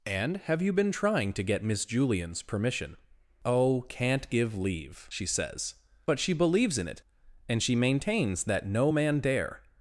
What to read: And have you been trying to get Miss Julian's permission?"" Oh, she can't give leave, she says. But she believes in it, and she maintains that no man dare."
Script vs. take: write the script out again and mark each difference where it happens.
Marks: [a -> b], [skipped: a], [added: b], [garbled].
And have you been trying to get Miss Julian's permission?"" Oh, [skipped: she] can't give leave, she says. But she believes in it, and she maintains that no man dare."